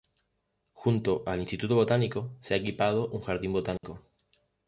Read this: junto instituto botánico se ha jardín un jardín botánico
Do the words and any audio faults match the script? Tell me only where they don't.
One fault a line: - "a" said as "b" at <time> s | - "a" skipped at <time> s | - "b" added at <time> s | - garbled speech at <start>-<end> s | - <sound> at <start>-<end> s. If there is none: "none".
- "al" added at 1.3 s
- "jardín" said as "equipado" at 2.6 s
- dropout at 3.8-3.8 s